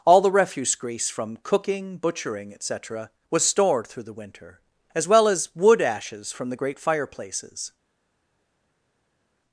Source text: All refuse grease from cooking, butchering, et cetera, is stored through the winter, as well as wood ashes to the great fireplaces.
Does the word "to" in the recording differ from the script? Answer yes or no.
yes